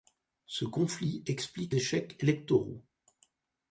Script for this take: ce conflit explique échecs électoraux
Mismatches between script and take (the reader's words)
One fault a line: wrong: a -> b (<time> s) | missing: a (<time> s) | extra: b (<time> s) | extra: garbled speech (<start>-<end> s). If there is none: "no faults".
no faults